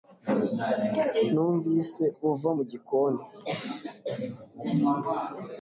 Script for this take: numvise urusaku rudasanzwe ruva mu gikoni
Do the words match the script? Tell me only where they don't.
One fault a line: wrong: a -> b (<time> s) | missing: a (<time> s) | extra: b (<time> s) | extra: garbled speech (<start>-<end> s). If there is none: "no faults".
missing: urusaku rudasanzwe (2.0 s)